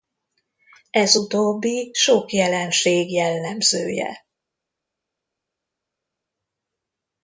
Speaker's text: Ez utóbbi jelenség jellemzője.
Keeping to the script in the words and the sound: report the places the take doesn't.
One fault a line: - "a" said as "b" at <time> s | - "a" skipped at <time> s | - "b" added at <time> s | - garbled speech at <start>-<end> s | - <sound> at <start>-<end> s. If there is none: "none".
- "sok" added at 1.9 s